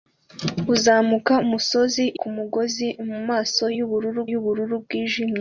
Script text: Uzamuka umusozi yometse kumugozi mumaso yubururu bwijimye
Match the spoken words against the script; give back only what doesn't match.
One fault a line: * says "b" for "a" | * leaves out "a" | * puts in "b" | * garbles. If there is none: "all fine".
* leaves out "yometse"
* puts in "yubururu"